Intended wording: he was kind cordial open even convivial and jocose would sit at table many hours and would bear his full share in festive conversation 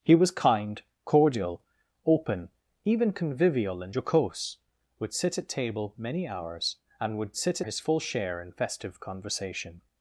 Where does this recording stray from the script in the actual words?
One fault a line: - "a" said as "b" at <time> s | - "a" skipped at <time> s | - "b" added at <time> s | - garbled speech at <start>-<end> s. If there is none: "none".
- "bear" said as "sit" at 7.3 s